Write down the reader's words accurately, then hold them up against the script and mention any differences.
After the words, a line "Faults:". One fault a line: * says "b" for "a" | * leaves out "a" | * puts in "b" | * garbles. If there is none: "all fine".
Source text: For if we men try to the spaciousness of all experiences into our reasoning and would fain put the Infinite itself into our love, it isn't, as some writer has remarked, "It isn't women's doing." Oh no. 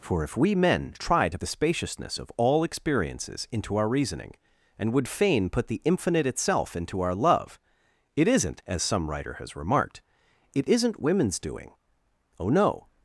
For if we men try to the spaciousness of all experiences into our reasoning and would fain put the Infinite itself into our love, it isn't, as some writer has remarked, "It isn't women's doing." Oh no.
Faults:
all fine